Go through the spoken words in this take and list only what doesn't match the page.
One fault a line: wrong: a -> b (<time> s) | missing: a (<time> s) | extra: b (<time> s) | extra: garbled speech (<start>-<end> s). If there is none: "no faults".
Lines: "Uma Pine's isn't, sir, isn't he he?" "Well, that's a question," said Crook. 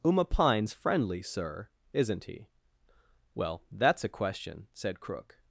wrong: isn't -> friendly (0.7 s)
missing: he (2.5 s)